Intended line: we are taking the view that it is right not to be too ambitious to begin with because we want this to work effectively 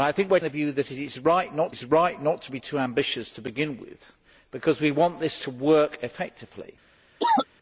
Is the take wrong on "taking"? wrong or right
wrong